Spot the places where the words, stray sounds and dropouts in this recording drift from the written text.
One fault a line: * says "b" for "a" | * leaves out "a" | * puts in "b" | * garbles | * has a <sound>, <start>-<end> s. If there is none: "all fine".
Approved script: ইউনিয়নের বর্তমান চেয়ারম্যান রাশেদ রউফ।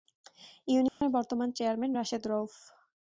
* has a dropout, 0.9-1.0 s